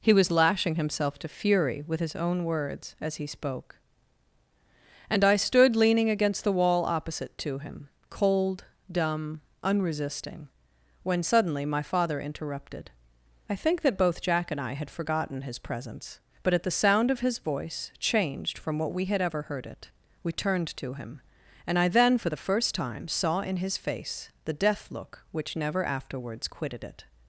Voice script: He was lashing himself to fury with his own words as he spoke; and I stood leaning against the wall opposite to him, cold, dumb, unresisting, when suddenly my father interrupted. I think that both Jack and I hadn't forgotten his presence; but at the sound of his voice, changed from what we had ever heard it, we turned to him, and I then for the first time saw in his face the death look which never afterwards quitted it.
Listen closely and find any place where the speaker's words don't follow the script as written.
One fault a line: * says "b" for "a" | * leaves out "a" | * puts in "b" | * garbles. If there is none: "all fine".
* says "had" for "hadn't"